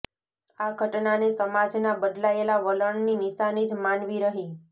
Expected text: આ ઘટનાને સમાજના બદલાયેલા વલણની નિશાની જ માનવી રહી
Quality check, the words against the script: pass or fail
pass